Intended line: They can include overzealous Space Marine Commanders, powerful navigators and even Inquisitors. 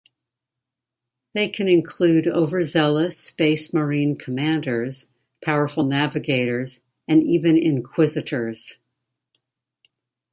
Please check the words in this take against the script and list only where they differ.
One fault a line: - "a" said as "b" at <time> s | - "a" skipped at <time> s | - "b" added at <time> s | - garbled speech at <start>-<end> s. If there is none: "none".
none